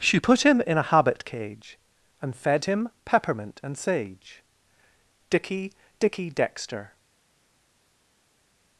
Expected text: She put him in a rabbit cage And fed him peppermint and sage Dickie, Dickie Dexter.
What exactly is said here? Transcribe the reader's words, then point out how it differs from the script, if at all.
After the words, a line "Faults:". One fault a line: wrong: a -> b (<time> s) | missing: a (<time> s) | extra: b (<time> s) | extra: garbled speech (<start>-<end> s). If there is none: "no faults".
She put him in a habit cage And fed him peppermint and sage Dickie, Dickie Dexter.
Faults:
wrong: rabbit -> habit (0.8 s)